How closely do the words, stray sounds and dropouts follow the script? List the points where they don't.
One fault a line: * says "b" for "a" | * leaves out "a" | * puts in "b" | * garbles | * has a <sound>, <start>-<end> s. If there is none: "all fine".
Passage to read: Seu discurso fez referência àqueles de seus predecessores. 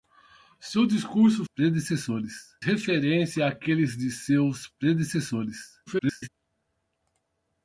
* says "predecessores" for "fez"
* garbles